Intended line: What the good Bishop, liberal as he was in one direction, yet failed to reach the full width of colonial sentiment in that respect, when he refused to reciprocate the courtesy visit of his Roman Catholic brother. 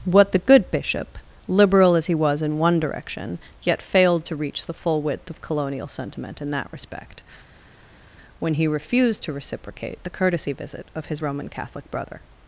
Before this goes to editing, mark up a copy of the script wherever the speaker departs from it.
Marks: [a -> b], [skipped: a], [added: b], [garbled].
What the good Bishop, liberal as he was in one direction, yet failed to reach the full width of colonial sentiment in that respect, when he refused to reciprocate the courtesy visit of his Roman Catholic brother.